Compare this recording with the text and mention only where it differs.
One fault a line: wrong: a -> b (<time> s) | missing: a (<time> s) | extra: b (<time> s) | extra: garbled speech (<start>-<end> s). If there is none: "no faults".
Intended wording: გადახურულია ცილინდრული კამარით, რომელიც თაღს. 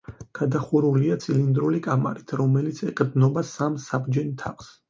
extra: ეყრდნობა სამ საბჯენ (2.9 s)